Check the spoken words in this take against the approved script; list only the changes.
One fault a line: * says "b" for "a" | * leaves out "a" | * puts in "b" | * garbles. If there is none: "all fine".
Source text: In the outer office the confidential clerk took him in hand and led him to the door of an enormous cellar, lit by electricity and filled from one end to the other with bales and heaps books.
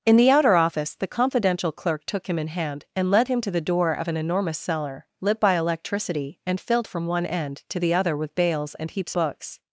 all fine